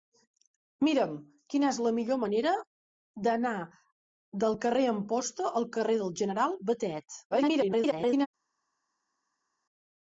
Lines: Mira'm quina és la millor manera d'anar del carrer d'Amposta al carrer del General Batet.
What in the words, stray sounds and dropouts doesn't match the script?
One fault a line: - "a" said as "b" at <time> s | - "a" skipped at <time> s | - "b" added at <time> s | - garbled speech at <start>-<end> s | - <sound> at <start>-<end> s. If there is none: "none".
- garbled speech at 7.3-8.3 s